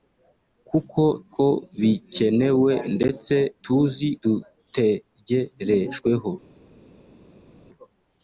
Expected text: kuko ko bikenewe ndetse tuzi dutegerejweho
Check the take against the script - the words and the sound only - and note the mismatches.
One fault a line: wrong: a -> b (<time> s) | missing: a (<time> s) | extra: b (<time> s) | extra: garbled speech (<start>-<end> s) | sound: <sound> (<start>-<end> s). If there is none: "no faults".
no faults